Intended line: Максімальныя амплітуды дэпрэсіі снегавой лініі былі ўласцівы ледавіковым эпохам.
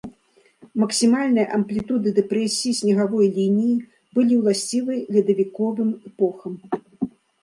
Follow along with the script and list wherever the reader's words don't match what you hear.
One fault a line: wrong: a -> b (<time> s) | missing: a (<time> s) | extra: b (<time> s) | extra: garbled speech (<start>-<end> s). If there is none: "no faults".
no faults